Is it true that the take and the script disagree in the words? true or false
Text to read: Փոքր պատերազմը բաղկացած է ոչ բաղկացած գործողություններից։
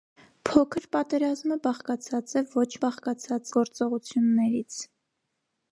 false